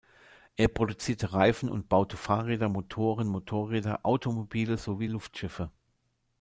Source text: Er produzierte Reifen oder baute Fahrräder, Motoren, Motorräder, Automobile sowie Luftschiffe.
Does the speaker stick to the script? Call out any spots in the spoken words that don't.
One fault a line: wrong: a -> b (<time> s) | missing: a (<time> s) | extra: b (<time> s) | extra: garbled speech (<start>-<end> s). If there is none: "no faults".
wrong: oder -> und (1.7 s)